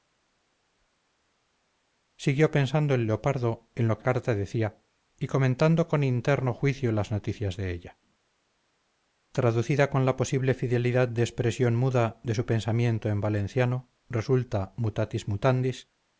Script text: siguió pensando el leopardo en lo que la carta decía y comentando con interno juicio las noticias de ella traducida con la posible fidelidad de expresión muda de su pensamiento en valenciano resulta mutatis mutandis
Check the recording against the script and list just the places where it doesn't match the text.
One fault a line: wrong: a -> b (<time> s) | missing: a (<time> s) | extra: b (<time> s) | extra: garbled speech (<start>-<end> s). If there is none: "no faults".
missing: la (4.0 s)